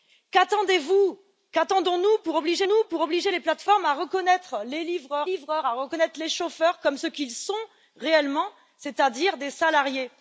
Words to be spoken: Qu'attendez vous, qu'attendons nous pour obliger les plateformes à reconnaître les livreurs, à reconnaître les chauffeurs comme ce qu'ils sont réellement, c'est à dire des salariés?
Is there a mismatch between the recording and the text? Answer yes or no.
yes